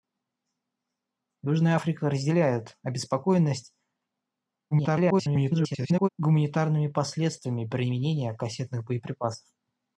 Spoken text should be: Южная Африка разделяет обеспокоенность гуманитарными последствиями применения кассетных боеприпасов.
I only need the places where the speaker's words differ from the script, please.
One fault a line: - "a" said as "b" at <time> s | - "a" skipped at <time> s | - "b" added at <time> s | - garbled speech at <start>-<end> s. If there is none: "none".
- garbled speech at 4.7-6.1 s